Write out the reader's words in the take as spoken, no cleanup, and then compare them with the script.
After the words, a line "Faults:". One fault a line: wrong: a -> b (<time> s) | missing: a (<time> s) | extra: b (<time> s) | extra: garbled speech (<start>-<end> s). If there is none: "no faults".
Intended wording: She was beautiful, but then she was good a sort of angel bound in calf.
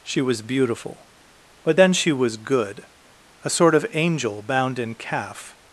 She was beautiful, but then she was good a sort of angel bound in calf.
Faults:
no faults